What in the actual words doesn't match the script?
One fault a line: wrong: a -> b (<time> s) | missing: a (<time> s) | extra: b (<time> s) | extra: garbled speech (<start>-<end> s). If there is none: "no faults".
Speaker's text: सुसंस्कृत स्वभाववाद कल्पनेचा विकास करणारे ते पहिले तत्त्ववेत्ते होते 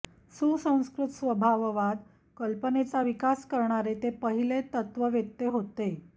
no faults